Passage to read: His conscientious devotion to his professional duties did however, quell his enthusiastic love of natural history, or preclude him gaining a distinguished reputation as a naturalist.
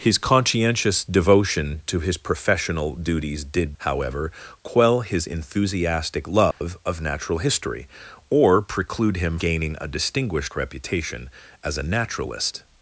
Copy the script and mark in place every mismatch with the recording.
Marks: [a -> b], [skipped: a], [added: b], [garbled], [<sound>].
His conscientious devotion to his professional duties did however, quell his enthusiastic love [dropout] of natural history, or preclude him gaining a distinguished reputation as a naturalist.